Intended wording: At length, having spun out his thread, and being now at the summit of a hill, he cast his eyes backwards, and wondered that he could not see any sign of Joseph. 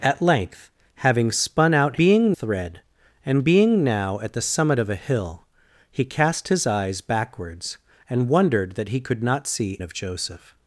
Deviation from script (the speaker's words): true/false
true